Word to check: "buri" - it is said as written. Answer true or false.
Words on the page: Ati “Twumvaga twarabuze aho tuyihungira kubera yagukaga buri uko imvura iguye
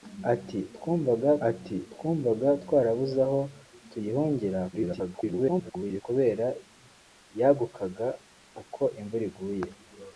false